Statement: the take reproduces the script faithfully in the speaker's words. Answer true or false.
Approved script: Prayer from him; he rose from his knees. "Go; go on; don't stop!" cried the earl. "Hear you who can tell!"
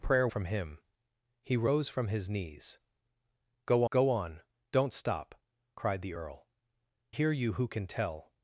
true